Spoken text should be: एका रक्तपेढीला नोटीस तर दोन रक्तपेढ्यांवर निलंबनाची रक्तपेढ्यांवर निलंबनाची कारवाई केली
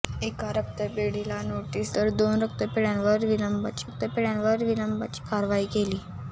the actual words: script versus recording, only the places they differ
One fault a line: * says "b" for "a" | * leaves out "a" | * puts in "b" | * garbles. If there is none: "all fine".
all fine